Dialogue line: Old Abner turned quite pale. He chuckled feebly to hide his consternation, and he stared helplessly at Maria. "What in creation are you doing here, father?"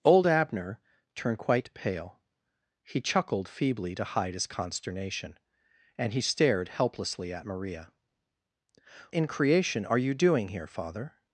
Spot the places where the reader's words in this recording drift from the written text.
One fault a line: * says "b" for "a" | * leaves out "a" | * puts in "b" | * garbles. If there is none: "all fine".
* leaves out "What"